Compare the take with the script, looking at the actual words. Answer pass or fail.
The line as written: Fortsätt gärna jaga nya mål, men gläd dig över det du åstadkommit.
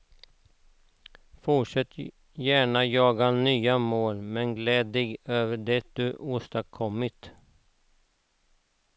pass